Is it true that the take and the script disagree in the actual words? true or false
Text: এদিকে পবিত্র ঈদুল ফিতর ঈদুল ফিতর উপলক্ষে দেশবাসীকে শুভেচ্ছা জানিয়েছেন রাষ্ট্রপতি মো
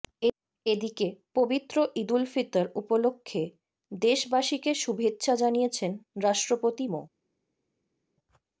true